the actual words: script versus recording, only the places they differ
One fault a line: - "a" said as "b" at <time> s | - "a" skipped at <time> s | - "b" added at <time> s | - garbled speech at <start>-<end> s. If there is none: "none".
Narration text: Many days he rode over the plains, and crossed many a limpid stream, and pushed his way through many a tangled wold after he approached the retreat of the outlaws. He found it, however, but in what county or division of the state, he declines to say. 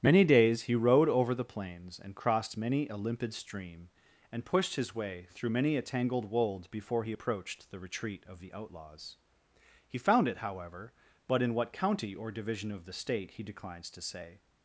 - "after" said as "before" at 6.7 s